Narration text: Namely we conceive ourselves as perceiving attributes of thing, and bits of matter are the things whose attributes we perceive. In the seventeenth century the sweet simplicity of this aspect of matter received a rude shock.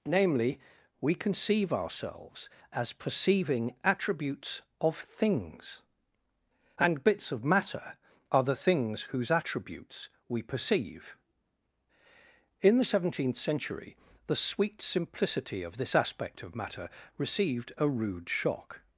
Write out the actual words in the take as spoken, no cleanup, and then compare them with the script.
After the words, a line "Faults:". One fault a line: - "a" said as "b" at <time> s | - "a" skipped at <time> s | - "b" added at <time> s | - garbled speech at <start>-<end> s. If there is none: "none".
Namely we conceive ourselves as perceiving attributes of things, and bits of matter are the things whose attributes we perceive. In the seventeenth century the sweet simplicity of this aspect of matter received a rude shock.
Faults:
- "thing" said as "things" at 5.0 s